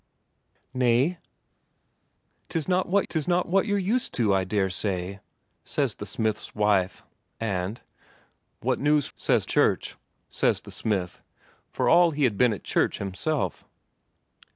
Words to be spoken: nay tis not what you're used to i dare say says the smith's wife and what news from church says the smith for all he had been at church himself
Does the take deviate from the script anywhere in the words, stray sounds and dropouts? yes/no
yes